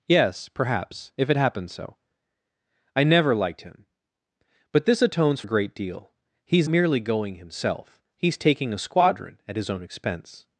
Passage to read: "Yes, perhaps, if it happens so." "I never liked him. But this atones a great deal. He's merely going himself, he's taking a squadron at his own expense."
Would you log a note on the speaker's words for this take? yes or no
no